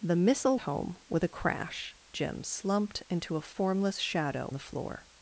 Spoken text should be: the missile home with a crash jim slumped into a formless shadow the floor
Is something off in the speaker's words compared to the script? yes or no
no